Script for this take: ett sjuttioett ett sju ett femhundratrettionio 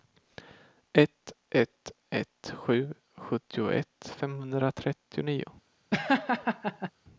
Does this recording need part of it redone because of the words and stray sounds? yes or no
yes